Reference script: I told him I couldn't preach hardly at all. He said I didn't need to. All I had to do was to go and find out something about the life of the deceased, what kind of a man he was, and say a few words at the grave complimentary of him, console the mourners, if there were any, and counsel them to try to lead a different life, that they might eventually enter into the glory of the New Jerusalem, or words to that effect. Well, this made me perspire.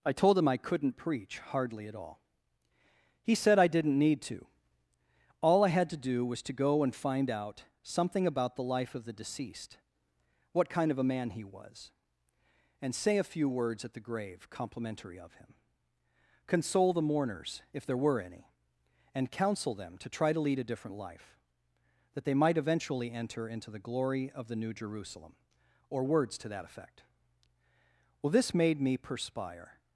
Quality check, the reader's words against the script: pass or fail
pass